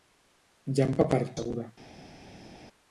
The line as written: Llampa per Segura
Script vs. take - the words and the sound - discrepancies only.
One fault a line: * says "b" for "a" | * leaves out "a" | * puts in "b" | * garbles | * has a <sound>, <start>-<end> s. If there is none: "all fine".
all fine